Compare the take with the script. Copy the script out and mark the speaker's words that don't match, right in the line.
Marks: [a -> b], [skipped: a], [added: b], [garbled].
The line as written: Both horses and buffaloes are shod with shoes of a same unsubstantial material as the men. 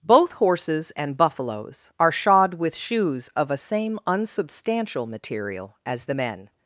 Both horses and buffaloes are shod with shoes of a same unsubstantial material as the men.